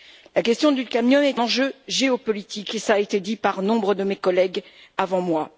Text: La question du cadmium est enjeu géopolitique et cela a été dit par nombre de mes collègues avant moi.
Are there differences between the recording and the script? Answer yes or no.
no